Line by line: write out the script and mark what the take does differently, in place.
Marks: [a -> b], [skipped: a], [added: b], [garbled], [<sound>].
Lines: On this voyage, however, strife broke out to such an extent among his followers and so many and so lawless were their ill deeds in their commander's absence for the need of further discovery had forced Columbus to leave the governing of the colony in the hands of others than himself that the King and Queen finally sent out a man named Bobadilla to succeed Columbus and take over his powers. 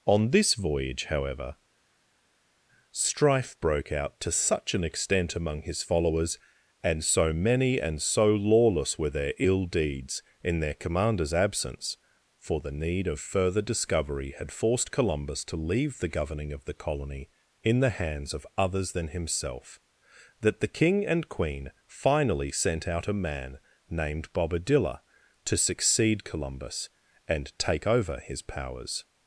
On this voyage, however, strife broke out to such an extent among his followers and so many and so lawless were their ill deeds in their commander's absence for the need of further discovery had forced Columbus to leave the governing of the colony in the hands of others than himself that the King and Queen finally sent out a man named Bobadilla to succeed Columbus and take over his powers.